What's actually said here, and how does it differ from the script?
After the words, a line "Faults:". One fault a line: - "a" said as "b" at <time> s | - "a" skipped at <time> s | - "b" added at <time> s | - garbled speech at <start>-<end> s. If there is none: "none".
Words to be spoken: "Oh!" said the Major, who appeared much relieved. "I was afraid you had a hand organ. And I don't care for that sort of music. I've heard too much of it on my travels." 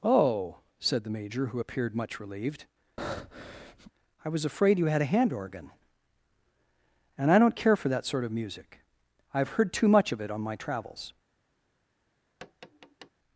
"Oh!" said the Major, who appeared much relieved. "I was afraid you had a hand organ. And I don't care for that sort of music. I've heard too much of it on my travels."
Faults:
none